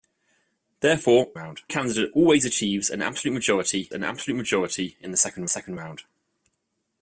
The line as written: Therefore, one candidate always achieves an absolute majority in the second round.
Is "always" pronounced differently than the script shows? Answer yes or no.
no